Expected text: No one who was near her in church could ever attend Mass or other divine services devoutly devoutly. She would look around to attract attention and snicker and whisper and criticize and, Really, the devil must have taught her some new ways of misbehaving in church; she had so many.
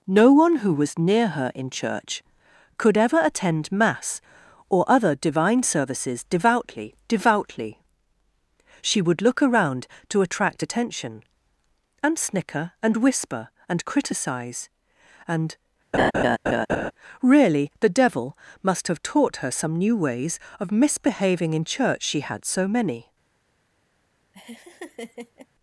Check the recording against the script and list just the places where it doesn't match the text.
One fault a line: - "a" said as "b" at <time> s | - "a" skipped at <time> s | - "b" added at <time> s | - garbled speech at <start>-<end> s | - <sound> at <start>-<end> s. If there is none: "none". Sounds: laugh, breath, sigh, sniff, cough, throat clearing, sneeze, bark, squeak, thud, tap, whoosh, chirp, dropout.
- laugh at 15.9-16.9 s
- laugh at 24.3-25.5 s